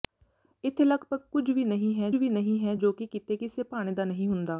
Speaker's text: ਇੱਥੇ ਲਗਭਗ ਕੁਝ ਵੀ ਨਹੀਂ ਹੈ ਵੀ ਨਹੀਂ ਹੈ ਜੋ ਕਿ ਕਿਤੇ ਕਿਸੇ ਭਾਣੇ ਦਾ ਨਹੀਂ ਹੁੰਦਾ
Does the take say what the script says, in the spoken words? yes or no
yes